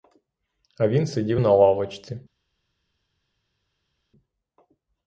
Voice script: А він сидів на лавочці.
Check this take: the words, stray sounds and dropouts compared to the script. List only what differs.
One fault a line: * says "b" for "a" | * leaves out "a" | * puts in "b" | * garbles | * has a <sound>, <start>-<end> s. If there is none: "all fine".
all fine